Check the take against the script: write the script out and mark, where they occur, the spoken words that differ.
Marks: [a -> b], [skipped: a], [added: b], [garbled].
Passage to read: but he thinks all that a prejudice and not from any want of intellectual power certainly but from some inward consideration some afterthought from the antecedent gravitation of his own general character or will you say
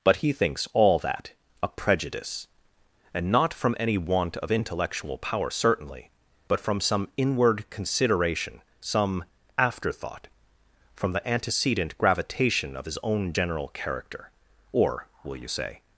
but he thinks all that a prejudice and not from any want of intellectual power certainly but from some inward consideration some afterthought from the antecedent gravitation of his own general character or will you say